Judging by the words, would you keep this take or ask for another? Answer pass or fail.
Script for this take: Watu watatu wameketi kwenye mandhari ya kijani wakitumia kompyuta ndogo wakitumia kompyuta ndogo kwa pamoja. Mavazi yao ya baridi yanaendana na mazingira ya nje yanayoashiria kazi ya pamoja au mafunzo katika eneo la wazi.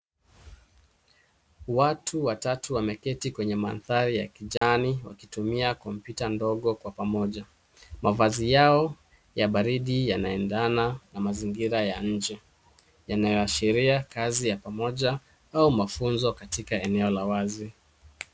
fail